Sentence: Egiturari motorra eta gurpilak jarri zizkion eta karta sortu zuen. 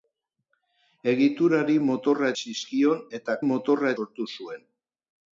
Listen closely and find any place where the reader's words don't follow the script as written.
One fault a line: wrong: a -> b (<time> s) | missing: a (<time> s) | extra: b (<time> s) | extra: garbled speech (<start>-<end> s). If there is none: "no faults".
missing: eta gurpilak jarri (2.3 s)
wrong: karta -> motorra (3.5 s)